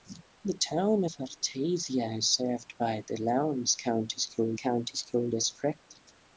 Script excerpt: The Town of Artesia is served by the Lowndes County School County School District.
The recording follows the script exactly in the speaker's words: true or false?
true